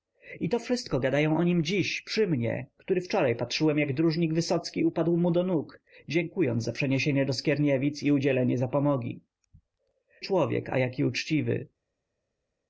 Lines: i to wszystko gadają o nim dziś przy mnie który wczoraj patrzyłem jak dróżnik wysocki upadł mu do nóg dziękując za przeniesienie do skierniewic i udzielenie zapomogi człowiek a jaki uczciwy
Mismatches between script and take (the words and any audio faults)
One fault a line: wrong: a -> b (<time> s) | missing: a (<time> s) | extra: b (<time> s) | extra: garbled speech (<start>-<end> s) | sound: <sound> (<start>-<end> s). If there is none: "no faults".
no faults